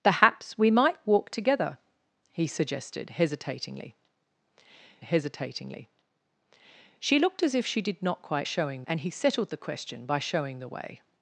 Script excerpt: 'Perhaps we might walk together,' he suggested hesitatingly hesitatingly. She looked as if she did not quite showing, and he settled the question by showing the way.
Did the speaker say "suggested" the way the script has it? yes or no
yes